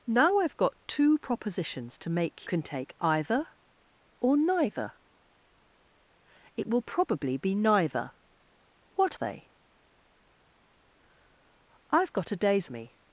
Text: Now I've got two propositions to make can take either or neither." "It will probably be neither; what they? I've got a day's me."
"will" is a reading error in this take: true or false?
false